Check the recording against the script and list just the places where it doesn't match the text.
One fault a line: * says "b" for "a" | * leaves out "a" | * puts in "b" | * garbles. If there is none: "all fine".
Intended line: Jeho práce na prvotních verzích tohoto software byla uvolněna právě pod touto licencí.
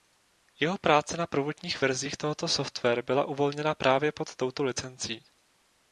all fine